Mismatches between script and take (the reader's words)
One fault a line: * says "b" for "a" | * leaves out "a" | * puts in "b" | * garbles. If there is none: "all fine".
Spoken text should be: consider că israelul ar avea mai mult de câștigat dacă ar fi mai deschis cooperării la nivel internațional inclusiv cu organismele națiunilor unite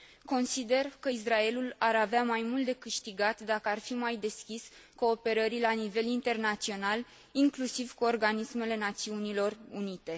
all fine